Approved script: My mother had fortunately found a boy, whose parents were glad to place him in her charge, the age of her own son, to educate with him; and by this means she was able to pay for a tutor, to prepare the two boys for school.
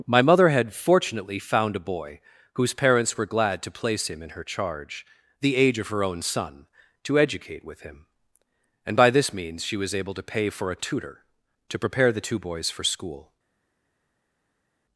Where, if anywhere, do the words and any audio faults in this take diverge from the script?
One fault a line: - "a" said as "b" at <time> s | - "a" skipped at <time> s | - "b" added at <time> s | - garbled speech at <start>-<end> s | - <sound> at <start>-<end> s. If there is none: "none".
none